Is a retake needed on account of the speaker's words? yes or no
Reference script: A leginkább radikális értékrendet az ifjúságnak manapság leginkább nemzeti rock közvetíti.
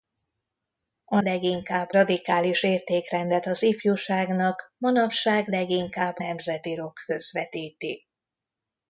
no